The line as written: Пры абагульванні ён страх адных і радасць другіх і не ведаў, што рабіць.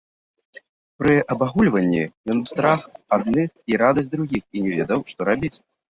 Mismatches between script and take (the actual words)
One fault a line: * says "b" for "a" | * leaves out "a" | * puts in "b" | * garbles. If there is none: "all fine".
all fine